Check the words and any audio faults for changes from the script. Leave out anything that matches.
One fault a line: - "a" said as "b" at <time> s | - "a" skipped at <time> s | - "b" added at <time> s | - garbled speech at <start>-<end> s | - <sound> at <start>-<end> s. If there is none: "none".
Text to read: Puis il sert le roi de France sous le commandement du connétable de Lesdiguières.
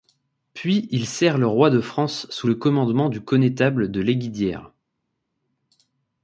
none